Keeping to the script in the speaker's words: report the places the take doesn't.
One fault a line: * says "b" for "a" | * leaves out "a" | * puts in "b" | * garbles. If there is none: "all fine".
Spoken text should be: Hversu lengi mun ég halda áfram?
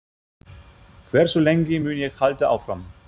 all fine